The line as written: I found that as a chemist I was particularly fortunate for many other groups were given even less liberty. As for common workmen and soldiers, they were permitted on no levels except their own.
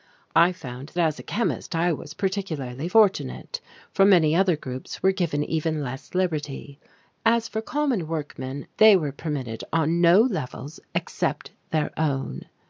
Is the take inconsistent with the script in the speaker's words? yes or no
yes